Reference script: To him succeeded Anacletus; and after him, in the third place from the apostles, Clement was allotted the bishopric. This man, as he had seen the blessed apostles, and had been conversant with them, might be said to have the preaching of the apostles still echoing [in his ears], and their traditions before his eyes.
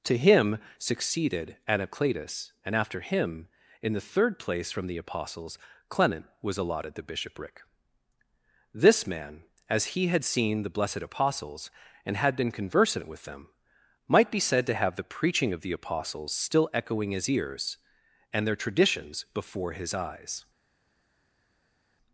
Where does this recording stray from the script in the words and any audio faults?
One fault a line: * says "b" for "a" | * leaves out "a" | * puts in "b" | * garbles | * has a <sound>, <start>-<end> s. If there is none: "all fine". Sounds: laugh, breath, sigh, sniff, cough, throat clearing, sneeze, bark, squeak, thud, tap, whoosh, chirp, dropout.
* leaves out "in"